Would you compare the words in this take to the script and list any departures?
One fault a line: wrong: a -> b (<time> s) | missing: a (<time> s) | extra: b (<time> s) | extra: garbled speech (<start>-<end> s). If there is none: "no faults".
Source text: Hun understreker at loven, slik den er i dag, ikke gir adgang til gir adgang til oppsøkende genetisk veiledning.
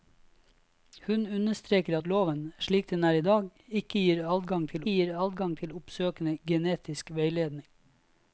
no faults